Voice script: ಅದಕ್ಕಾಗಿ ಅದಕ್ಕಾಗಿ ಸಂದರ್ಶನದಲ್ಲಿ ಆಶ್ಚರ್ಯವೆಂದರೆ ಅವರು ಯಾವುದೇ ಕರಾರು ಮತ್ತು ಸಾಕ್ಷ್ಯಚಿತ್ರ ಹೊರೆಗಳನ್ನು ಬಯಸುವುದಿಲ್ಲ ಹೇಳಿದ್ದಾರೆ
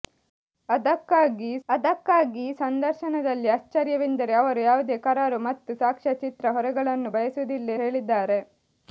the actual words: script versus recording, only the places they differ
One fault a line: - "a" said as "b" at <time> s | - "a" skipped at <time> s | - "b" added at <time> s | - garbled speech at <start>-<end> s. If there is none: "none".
none